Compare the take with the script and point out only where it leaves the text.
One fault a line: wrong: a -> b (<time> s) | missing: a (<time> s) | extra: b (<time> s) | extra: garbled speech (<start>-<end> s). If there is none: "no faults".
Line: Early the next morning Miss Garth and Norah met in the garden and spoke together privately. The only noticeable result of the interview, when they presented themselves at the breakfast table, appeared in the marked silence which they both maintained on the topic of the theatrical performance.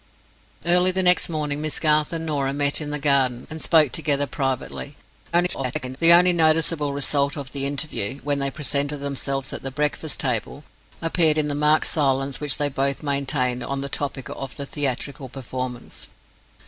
extra: garbled speech (5.3-6.0 s)